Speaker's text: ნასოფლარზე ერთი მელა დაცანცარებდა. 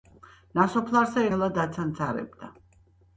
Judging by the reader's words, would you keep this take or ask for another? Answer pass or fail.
fail